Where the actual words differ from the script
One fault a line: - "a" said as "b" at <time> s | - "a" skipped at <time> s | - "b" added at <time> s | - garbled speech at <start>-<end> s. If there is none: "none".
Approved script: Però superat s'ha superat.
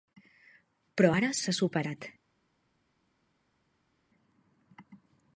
- "superat" said as "ara" at 1.1 s